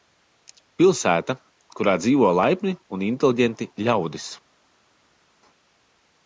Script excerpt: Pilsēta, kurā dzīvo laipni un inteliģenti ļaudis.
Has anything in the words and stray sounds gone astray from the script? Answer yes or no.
no